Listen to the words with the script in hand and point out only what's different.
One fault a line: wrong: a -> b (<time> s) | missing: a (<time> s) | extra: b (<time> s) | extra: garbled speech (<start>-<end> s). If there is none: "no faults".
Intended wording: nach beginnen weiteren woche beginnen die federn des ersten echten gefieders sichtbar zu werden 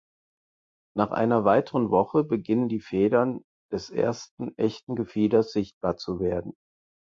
wrong: beginnen -> einer (1.1 s)